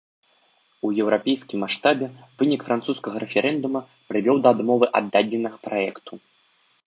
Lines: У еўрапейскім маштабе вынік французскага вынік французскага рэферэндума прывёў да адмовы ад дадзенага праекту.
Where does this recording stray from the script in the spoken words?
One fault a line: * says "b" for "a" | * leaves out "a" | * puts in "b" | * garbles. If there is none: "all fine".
* leaves out "вынік французскага"